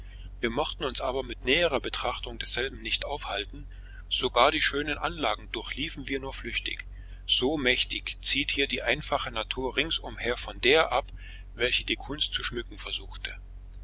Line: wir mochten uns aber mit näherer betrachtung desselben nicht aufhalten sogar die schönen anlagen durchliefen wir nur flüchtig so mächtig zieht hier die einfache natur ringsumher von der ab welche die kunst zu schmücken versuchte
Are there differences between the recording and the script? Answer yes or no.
no